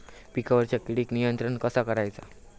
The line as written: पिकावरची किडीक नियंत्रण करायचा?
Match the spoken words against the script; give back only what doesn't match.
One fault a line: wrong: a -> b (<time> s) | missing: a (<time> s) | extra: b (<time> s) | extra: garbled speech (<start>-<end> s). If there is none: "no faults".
extra: कसा (1.6 s)